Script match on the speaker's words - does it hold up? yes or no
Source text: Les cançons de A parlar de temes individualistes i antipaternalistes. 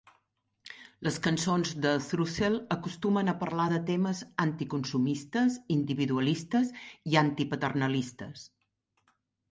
no